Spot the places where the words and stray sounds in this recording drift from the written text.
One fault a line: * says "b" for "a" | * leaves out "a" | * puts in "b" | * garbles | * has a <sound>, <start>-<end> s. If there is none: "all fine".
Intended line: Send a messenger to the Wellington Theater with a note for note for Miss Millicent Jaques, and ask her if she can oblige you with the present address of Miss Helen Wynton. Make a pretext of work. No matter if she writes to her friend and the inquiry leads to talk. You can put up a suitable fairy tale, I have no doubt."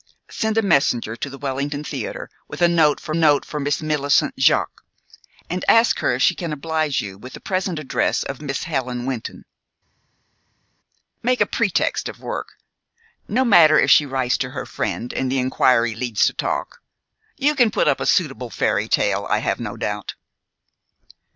all fine